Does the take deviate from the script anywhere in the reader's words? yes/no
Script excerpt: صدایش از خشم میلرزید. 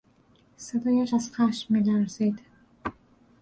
no